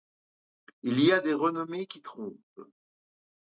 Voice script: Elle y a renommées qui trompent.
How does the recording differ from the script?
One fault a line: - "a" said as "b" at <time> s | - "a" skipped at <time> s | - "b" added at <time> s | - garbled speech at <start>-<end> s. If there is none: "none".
- "Elle" said as "Il" at 0.8 s
- "des" added at 1.2 s